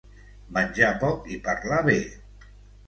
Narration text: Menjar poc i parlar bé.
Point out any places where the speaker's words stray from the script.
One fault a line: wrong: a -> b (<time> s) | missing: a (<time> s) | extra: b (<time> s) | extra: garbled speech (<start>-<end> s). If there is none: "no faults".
no faults